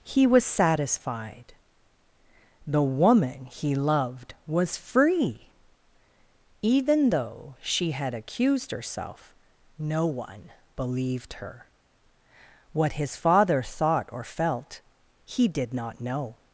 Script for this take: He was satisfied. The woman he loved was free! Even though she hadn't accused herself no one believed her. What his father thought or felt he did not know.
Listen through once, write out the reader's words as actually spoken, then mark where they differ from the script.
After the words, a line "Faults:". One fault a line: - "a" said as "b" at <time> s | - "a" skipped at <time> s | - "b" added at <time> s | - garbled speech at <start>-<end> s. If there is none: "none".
He was satisfied. The woman he loved was free! Even though she had accused herself no one believed her. What his father thought or felt he did not know.
Faults:
- "hadn't" said as "had" at 7.9 s